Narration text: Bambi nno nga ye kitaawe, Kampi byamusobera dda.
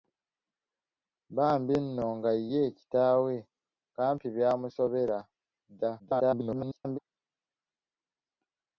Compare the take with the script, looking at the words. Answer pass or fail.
fail